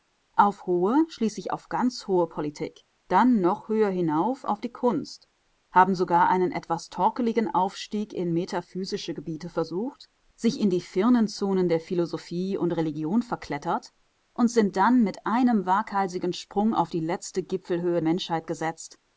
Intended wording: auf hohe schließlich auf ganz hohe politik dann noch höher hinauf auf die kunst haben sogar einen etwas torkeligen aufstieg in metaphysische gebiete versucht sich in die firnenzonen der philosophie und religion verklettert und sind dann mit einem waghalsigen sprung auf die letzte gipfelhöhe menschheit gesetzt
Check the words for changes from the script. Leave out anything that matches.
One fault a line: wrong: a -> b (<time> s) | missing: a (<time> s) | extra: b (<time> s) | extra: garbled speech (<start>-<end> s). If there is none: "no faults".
no faults